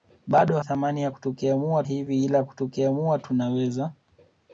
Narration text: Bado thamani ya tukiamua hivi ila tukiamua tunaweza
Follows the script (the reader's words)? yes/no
yes